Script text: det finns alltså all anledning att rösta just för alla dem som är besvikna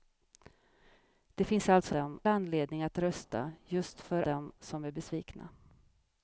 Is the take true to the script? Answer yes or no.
no